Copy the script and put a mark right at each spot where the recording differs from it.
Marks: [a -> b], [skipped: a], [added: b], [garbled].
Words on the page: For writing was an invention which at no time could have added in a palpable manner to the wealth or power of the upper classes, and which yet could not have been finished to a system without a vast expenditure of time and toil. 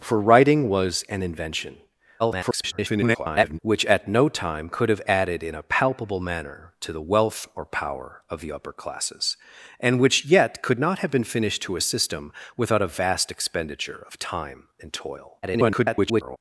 For writing was an invention [garbled] which at no time could have added in a palpable manner to the wealth or power of the upper classes, and which yet could not have been finished to a system without a vast expenditure of time and toil. [garbled]